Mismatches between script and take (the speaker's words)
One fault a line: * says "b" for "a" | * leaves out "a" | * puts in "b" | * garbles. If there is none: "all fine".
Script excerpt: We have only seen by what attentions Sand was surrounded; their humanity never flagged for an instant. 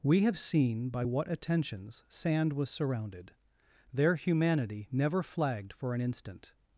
* leaves out "only"